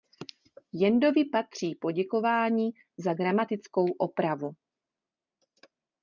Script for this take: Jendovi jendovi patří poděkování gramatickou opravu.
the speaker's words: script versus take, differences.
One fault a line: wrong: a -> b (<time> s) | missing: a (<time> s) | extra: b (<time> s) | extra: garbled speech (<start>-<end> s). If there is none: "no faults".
missing: jendovi (1.2 s)
extra: za (3.0 s)